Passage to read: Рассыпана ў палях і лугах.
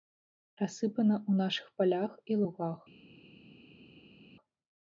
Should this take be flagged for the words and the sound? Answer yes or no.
yes